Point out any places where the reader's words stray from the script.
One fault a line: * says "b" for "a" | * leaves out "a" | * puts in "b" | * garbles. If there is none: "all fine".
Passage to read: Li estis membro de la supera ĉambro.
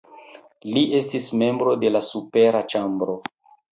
all fine